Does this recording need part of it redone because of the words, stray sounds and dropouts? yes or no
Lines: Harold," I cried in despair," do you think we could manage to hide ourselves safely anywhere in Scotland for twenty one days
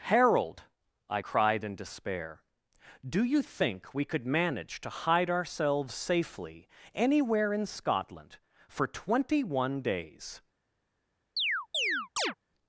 yes